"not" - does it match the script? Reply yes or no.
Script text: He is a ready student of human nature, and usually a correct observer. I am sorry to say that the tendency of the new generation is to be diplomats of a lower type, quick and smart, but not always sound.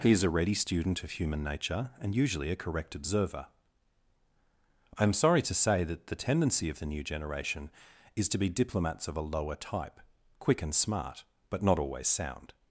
yes